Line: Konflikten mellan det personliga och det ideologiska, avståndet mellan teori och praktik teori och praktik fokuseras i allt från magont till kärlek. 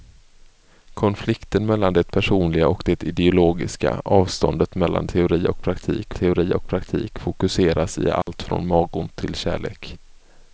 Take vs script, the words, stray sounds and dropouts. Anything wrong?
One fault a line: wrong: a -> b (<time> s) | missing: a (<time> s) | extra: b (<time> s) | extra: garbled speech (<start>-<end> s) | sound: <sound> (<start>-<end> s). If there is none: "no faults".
sound: dropout (8.2-8.3 s)